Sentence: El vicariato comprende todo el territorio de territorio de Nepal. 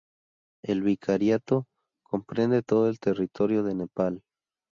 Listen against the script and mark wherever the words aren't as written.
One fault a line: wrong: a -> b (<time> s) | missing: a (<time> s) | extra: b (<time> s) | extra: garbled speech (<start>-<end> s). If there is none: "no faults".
missing: territorio de (3.8 s)